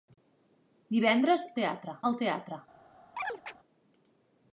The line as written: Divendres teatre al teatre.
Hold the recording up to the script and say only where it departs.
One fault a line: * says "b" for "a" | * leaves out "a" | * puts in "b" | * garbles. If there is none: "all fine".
all fine